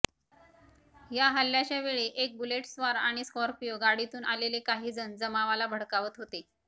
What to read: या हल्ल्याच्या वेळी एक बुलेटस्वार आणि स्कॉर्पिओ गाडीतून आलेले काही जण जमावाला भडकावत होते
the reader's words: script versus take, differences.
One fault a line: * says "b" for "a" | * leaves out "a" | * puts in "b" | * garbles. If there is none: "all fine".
all fine